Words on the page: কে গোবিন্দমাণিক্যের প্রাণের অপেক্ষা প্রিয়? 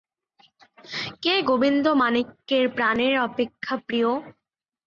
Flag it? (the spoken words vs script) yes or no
no